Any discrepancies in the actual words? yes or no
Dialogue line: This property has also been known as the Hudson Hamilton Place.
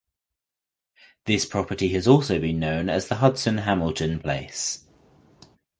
no